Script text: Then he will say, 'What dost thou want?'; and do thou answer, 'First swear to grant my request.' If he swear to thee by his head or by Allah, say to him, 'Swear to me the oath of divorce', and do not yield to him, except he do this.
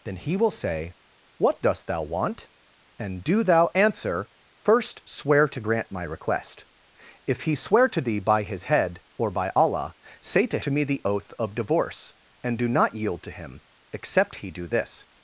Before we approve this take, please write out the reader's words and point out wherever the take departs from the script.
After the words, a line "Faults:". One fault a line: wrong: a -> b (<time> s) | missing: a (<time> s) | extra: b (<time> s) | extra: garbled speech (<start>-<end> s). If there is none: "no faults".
Then he will say, 'What dost thou want?'; and do thou answer, 'First swear to grant my request.' If he swear to thee by his head or by Allah, say to to me the oath of divorce', and do not yield to him, except he do this.
Faults:
missing: him Swear (10.6 s)